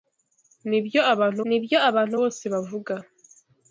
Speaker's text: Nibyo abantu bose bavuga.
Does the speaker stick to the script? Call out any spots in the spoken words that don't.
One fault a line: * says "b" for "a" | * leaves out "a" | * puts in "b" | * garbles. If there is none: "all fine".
* puts in "nibyo abantu"